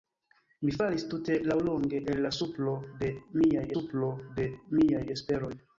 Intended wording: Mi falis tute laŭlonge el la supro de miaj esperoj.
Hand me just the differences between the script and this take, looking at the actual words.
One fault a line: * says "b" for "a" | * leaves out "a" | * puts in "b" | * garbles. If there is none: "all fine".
* puts in "supro de miaj"